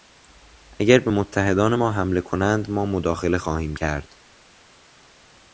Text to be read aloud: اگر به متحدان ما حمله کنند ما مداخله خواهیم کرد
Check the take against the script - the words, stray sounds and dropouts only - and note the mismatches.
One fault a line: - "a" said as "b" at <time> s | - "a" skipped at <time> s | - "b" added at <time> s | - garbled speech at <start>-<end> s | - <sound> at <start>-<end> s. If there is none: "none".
none